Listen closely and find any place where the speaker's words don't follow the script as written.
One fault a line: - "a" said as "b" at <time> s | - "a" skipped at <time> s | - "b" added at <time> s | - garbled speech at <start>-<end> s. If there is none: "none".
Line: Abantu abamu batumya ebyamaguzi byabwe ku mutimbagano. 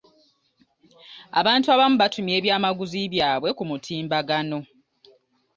none